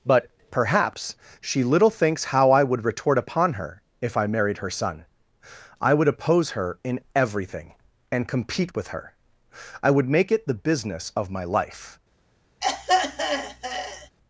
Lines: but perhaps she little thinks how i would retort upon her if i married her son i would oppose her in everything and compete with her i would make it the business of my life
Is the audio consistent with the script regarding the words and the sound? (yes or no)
no